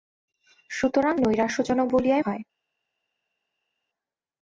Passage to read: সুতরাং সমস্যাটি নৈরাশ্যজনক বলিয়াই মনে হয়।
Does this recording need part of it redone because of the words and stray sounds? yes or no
yes